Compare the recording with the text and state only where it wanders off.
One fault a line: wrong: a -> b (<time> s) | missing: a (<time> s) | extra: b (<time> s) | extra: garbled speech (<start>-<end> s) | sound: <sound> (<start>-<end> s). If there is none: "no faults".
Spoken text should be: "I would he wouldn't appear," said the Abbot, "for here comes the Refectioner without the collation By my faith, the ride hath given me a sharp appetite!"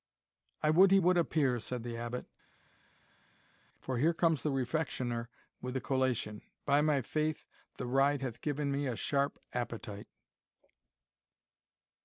wrong: wouldn't -> would (1.0 s)
wrong: without -> with (5.6 s)